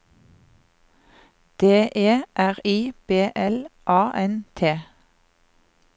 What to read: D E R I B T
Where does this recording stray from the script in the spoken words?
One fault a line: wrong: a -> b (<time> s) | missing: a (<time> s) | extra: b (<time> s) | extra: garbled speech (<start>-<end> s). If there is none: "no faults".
extra: L A N (3.3 s)